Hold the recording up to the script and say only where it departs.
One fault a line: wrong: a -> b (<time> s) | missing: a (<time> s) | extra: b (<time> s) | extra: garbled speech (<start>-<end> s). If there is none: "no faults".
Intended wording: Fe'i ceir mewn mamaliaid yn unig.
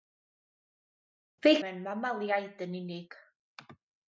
missing: ceir (1.6 s)